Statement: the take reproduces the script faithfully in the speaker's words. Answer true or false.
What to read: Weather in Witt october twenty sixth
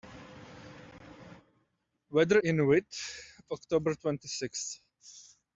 true